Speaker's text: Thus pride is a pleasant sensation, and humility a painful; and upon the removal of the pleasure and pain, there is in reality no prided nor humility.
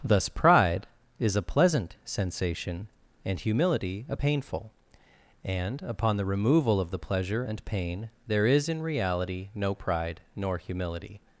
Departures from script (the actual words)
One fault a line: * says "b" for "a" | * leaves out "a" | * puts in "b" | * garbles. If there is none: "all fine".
* says "pride" for "prided"